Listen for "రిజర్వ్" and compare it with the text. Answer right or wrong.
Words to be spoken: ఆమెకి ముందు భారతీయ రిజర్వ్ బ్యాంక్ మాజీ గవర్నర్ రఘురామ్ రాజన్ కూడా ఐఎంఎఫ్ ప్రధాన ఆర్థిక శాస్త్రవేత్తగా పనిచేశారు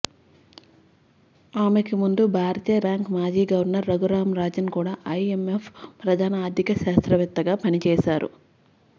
wrong